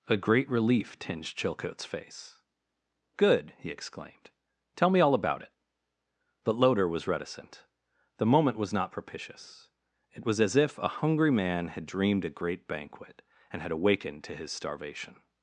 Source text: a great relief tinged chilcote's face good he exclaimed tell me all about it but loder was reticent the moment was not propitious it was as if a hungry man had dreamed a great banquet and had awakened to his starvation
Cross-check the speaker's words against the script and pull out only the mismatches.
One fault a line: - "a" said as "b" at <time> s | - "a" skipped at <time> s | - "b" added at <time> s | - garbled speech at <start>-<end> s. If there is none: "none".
none